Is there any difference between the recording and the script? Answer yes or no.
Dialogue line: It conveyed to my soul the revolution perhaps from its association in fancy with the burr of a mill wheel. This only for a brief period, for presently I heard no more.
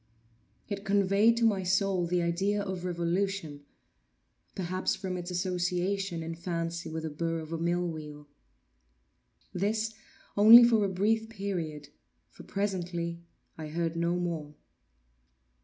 yes